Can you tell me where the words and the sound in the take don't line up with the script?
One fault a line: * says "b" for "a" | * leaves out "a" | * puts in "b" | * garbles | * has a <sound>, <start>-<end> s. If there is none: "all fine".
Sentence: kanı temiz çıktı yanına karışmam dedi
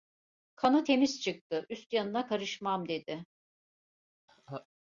* puts in "üst"
* has a laugh, 4.3-4.7 s